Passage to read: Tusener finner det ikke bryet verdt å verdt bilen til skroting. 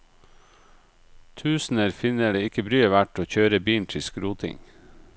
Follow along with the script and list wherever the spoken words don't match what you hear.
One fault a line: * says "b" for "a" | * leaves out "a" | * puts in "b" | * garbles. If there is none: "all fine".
* says "kjøre" for "verdt"